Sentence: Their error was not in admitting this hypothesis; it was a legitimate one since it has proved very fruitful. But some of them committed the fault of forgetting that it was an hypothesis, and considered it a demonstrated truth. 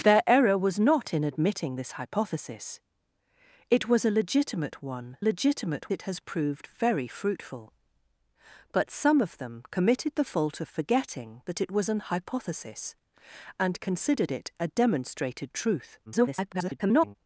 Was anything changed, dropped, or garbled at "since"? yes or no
yes